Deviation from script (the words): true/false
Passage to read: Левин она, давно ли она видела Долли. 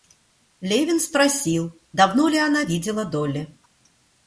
true